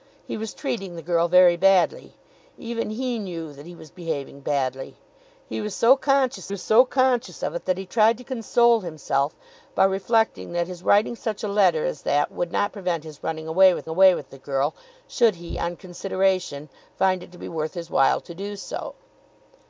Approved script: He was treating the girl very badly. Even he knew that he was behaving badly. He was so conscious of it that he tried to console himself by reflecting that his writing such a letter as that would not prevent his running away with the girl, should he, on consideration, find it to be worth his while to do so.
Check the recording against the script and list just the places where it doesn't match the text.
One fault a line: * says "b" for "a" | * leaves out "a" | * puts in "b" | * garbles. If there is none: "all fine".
* puts in "was so conscious"
* puts in "away with"